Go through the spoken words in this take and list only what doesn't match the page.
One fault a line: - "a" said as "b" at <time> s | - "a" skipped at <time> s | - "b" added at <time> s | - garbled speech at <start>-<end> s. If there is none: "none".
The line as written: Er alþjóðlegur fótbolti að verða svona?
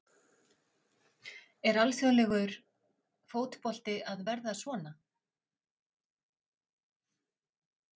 none